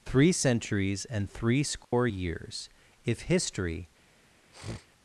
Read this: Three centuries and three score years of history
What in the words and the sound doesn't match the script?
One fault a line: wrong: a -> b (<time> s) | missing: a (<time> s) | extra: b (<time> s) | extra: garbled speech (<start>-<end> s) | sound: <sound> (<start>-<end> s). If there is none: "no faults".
sound: dropout (1.8-1.9 s)
wrong: of -> if (3.0 s)
sound: sniff (4.5-4.9 s)